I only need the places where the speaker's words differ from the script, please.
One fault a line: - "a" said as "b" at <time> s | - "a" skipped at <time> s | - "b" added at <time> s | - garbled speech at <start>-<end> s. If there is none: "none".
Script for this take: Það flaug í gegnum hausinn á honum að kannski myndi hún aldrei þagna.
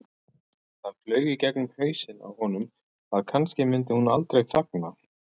none